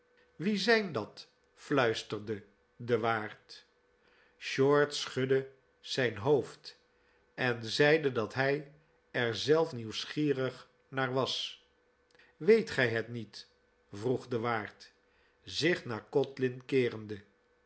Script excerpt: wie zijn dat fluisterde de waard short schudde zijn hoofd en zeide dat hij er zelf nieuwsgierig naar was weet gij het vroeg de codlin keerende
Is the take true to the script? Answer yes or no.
no